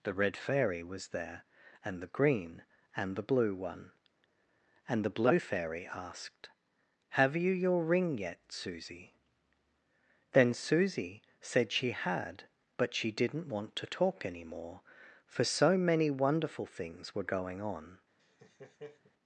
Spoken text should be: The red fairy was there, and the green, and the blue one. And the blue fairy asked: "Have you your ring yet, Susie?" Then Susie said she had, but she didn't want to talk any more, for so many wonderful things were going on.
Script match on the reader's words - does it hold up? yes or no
yes